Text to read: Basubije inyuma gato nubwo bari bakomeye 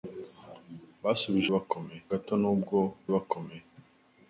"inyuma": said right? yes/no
no